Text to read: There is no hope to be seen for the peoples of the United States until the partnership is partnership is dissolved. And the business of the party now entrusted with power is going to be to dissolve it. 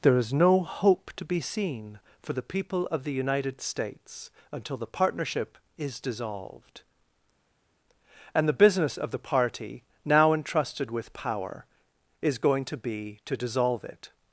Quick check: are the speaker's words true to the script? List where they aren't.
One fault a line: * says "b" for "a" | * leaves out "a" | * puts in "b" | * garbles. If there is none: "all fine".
* says "people" for "peoples"
* leaves out "partnership is"